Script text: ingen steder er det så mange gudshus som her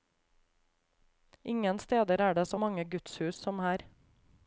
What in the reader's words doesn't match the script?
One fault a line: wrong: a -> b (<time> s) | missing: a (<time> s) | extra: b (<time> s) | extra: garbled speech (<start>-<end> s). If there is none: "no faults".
no faults